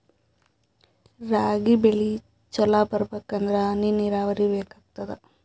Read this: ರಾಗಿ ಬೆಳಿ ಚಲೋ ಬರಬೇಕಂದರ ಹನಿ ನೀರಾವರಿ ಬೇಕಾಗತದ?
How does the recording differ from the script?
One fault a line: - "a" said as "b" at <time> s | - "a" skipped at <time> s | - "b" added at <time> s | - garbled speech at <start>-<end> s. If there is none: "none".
none